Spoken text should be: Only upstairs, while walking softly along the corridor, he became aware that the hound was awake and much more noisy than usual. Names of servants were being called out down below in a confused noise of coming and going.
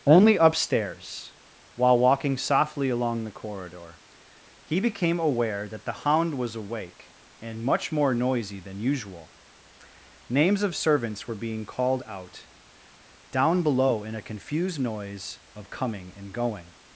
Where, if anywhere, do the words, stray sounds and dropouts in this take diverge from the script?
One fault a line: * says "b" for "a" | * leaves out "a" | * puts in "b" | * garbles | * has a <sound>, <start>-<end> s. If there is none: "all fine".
all fine